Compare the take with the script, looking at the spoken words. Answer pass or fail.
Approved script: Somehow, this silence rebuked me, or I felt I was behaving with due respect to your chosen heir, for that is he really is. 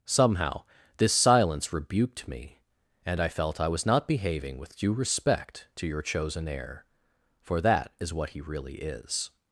fail